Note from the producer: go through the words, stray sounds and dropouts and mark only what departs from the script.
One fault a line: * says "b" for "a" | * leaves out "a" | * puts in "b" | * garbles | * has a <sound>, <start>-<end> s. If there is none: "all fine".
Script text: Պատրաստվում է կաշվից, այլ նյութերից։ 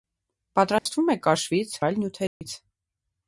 * has a dropout, 0.8-0.9 s
* has a dropout, 2.3-2.4 s